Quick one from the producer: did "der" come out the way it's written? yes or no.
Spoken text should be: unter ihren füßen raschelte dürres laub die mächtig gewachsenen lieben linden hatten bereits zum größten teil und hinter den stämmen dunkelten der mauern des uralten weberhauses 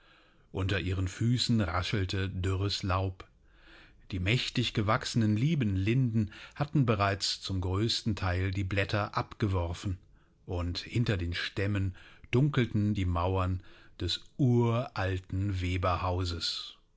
no